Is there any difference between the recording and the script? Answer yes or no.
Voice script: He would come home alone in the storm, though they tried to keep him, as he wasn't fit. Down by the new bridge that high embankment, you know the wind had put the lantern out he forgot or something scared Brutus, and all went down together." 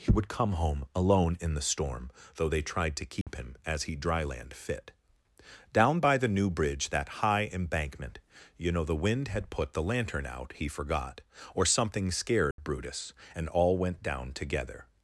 yes